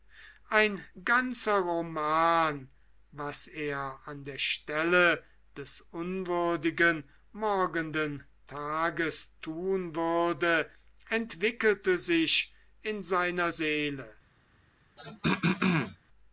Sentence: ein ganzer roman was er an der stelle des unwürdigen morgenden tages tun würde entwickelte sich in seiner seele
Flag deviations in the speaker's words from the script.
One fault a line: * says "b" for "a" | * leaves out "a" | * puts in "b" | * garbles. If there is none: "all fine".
all fine